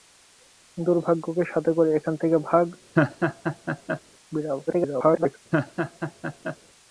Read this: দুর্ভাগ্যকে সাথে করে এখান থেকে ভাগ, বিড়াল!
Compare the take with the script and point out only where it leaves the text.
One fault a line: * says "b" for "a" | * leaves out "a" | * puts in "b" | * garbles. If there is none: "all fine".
* garbles